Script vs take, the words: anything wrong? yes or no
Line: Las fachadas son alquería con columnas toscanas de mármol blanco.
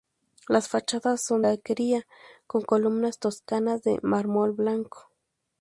no